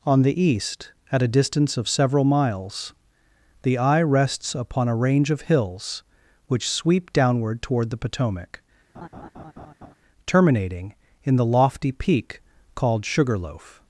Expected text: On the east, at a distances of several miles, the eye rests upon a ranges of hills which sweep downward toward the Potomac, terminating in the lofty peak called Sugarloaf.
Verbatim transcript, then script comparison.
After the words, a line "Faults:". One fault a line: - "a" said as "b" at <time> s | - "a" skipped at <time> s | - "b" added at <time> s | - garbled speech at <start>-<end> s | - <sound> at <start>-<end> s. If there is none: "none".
On the east, at a distance of several miles, the eye rests upon a range of hills which sweep downward toward the Potomac, terminating in the lofty peak called Sugarloaf.
Faults:
- "distances" said as "distance" at 1.3 s
- "ranges" said as "range" at 5.0 s
- laugh at 8.9-10.0 s